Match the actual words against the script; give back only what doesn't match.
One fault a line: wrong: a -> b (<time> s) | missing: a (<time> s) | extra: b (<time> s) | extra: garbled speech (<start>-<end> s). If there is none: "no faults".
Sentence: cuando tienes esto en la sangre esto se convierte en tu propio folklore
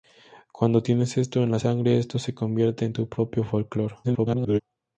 extra: garbled speech (4.0-4.6 s)